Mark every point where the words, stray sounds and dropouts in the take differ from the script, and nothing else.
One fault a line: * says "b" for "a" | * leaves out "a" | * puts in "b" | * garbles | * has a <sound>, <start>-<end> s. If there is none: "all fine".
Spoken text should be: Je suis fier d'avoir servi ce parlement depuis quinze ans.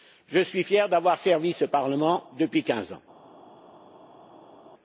all fine